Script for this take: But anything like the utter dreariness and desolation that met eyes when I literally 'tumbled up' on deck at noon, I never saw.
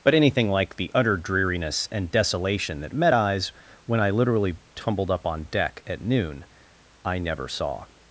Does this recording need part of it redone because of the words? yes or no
no